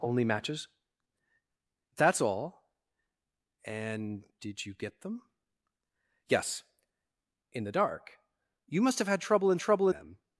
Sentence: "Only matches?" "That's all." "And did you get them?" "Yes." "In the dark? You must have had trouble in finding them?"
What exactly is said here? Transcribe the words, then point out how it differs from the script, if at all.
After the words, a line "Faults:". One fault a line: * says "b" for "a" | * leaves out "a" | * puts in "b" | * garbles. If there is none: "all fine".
"Only matches?" "That's all." "And did you get them?" "Yes." "In the dark? You must have had trouble in trouble them?"
Faults:
* says "trouble" for "finding"